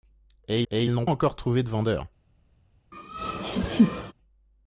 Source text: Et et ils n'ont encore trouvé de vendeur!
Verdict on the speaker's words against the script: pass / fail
pass